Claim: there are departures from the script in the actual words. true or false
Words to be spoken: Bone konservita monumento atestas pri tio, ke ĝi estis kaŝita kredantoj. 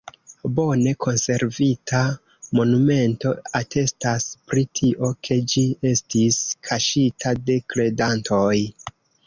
true